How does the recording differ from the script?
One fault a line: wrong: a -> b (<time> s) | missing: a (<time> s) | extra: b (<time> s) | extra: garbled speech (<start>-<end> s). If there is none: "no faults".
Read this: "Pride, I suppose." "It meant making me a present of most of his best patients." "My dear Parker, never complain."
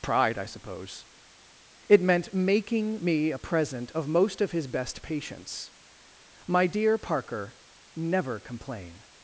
no faults